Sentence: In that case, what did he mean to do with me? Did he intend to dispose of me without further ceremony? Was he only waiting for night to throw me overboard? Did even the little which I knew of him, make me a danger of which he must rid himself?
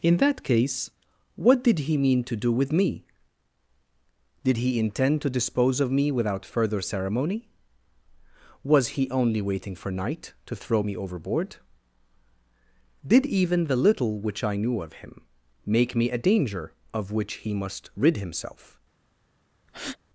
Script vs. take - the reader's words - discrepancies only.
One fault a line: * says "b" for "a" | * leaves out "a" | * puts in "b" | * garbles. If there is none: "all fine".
all fine